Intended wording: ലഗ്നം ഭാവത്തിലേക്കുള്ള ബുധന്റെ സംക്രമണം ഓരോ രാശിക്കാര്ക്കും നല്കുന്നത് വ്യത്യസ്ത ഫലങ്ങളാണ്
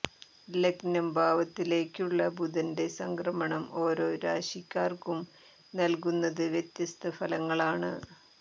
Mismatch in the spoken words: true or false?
false